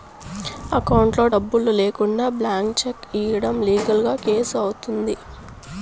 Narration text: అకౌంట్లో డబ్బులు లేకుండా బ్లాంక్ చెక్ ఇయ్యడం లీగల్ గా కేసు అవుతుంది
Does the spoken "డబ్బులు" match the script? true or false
true